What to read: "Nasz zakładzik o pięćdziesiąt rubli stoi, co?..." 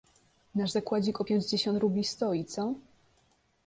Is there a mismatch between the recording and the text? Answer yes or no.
no